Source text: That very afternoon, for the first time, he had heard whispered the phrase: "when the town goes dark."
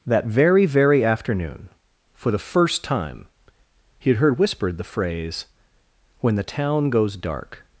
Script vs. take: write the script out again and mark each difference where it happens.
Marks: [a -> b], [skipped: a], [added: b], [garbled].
That very [added: very] afternoon, for the first time, he had heard whispered the phrase: "when the town goes dark."